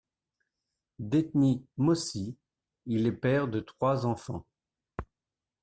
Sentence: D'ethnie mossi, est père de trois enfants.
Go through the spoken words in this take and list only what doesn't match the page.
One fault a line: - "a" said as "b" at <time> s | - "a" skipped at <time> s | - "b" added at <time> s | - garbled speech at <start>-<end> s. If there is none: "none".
- "il" added at 2.9 s